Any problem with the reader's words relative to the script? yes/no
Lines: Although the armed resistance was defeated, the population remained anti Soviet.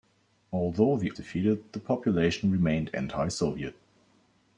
yes